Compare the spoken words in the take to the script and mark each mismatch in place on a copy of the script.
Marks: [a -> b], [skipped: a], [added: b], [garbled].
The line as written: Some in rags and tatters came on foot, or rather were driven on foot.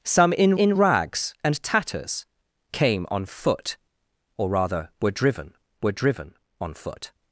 Some in [added: in] rags and tatters came on foot, or rather were driven [added: were driven] on foot.